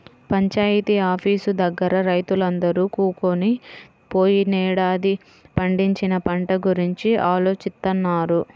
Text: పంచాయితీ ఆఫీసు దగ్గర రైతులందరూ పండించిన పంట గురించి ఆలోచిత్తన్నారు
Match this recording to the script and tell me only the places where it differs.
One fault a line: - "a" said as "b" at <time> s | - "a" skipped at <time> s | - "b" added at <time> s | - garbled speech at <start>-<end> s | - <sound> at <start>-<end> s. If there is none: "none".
- "కూకొని పోయినేడాది" added at 2.9 s